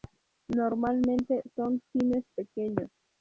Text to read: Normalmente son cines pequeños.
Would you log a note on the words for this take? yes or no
no